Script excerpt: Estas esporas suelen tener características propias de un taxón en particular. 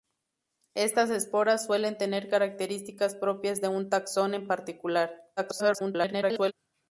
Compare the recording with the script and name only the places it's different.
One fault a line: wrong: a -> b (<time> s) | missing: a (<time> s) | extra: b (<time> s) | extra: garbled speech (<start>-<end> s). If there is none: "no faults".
extra: garbled speech (5.4-6.5 s)